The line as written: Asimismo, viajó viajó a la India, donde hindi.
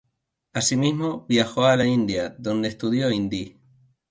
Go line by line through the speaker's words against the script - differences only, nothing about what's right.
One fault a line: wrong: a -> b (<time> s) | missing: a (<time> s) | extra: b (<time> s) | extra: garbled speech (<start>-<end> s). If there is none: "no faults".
missing: viajó (1.6 s)
extra: estudió (2.7 s)